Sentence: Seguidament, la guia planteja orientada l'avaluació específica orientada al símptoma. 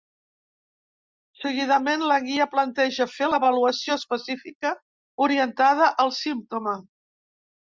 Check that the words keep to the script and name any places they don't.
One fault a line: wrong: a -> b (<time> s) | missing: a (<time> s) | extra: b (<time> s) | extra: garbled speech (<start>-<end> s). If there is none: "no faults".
wrong: orientada -> fer (3.2 s)